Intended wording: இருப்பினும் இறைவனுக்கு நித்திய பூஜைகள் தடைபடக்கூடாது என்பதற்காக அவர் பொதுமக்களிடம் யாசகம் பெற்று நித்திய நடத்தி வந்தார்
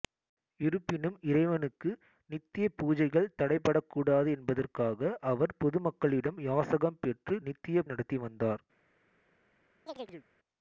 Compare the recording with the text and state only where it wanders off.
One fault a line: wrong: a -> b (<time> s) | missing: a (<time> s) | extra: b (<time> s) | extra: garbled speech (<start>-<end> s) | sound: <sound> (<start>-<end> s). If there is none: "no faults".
sound: chirp (9.9-10.3 s)